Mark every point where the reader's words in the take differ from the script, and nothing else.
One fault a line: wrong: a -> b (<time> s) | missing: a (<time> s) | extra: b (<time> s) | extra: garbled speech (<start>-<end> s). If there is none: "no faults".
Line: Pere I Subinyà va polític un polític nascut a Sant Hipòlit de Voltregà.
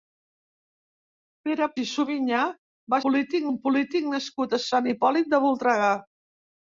no faults